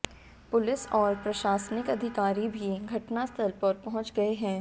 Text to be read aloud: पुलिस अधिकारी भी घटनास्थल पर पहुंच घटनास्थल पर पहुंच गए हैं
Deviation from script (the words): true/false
true